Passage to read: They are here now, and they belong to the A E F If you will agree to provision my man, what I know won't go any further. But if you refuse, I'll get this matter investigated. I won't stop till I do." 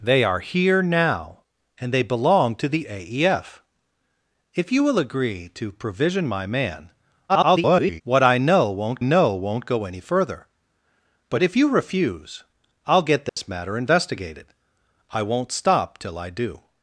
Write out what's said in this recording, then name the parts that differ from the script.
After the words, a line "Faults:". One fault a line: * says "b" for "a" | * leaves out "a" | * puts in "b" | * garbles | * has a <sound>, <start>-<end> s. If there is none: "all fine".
They are here now, and they belong to the A E F If you will agree to provision my man, [garbled] what I know won't know won't go any further. But if you refuse, I'll get this matter investigated. I won't stop till I do."
Faults:
* garbles
* puts in "know won't"
* has a dropout, 13.3-13.4 s